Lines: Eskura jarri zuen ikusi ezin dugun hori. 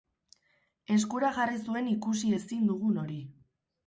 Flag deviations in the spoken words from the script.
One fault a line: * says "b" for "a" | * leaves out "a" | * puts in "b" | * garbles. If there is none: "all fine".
all fine